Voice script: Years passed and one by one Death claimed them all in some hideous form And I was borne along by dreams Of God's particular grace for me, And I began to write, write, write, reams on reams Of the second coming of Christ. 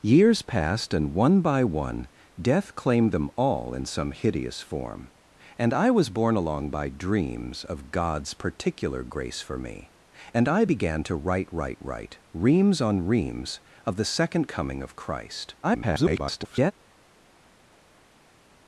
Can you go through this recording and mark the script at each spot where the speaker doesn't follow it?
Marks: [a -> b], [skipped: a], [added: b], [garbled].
Years passed and one by one Death claimed them all in some hideous form And I was borne along by dreams Of God's particular grace for me, And I began to write, write, write, reams on reams Of the second coming of Christ. [garbled]